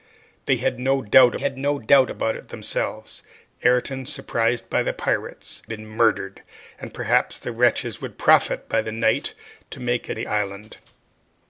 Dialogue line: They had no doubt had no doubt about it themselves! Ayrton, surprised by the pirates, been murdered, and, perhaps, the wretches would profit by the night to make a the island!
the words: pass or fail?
pass